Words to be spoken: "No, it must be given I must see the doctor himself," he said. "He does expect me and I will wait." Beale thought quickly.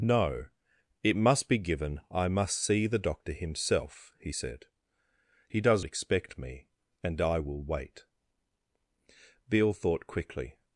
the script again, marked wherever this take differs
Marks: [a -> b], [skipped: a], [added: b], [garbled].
"No, it must be given I must see the doctor himself," he said. "He does expect me and I will wait." Beale thought quickly.